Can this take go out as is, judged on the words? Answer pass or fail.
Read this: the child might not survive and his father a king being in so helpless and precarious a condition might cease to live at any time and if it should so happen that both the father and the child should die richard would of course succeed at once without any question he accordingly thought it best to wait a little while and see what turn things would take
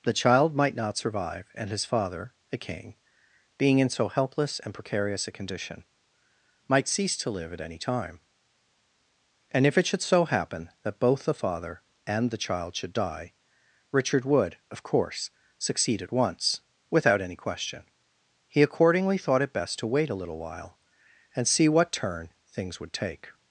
pass